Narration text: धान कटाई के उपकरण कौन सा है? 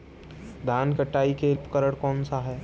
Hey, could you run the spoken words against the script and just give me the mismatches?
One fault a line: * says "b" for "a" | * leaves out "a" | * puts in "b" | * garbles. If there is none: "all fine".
all fine